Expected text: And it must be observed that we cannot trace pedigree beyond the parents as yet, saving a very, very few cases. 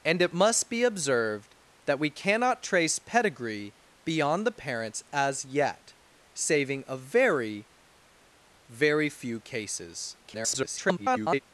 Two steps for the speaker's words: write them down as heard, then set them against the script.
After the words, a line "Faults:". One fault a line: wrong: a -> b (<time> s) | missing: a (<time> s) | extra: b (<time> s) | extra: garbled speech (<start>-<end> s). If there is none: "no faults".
And it must be observed that we cannot trace pedigree beyond the parents as yet, saving a very, very few cases. [garbled]
Faults:
extra: garbled speech (10.2-11.4 s)